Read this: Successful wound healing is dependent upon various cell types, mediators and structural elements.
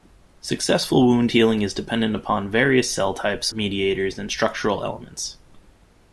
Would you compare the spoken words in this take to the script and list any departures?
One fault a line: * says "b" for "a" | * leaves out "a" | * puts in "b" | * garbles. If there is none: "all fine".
all fine